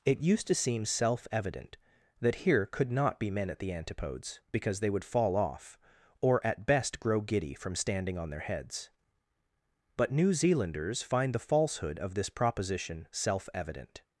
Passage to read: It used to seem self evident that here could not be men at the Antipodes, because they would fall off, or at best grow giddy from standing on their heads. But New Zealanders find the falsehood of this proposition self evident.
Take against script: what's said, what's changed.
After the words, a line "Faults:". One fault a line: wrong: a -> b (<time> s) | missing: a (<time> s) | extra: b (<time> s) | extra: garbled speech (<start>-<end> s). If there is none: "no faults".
It used to seem self evident that here could not be men at the Antipodes, because they would fall off, or at best grow giddy from standing on their heads. But New Zealanders find the falsehood of this proposition self evident.
Faults:
no faults